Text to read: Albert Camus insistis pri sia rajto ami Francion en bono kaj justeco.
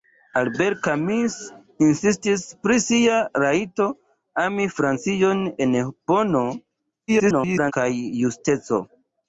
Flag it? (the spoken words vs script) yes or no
yes